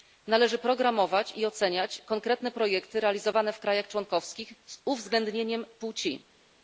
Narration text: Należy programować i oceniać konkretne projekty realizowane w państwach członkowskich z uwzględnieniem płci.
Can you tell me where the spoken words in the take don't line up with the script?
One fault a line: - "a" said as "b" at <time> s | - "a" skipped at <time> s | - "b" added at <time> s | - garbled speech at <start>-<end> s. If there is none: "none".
none